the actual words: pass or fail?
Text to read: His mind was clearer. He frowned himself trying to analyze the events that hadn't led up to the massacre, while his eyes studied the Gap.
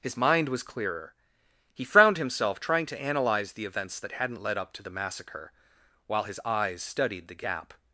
pass